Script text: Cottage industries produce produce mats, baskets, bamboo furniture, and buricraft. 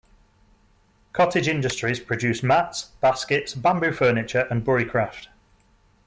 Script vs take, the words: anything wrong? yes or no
yes